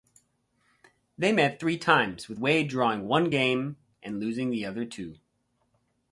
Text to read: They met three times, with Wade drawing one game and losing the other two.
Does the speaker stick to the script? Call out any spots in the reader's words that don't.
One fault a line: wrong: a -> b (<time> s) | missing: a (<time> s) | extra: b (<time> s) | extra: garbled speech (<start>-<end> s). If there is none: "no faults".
no faults